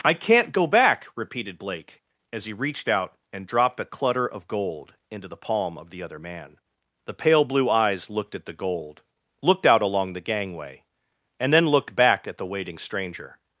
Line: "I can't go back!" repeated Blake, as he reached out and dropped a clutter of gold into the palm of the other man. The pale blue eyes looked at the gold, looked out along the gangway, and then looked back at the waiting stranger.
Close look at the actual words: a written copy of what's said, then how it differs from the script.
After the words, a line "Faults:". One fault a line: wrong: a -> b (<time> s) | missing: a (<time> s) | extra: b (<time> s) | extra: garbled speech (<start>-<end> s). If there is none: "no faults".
"I can't go back!" repeated Blake, as he reached out and dropped a clutter of gold into the palm of the other man. The pale blue eyes looked at the gold, looked out along the gangway, and then looked back at the waiting stranger.
Faults:
no faults